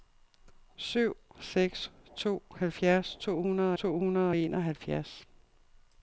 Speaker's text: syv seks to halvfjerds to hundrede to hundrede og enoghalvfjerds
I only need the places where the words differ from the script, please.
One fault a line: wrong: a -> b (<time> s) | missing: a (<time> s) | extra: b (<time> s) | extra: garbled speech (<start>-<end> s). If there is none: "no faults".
no faults